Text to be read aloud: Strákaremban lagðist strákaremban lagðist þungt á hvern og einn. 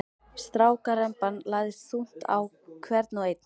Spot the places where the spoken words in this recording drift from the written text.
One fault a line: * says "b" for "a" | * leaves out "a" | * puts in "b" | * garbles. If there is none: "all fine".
* leaves out "strákaremban lagðist"